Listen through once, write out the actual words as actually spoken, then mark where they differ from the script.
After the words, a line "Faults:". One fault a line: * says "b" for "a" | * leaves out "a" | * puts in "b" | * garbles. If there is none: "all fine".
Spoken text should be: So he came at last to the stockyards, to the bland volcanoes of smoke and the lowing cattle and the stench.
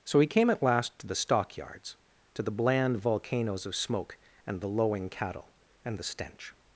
So he came at last to the stockyards, to the bland volcanoes of smoke and the lowing cattle and the stench.
Faults:
all fine